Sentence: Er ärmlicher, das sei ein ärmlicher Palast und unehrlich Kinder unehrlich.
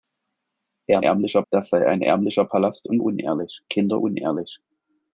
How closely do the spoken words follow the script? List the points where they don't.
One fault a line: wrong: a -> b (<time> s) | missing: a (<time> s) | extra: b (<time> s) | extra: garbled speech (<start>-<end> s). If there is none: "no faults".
no faults